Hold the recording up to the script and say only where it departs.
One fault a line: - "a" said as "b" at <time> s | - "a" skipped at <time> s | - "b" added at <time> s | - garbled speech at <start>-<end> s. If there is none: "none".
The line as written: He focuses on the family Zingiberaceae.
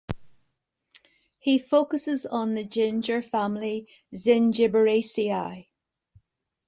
- "ginger" added at 2.6 s